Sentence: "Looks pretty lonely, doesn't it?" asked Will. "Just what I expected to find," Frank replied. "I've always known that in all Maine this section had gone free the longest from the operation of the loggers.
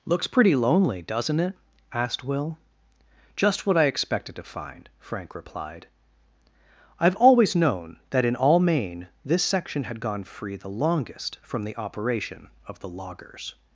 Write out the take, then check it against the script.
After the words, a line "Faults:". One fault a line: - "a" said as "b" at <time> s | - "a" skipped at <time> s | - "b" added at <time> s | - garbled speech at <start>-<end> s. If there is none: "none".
"Looks pretty lonely, doesn't it?" asked Will. "Just what I expected to find," Frank replied. "I've always known that in all Maine this section had gone free the longest from the operation of the loggers.
Faults:
none